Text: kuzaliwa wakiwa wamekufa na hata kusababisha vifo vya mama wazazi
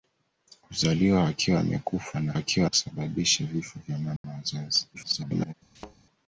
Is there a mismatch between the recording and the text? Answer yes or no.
yes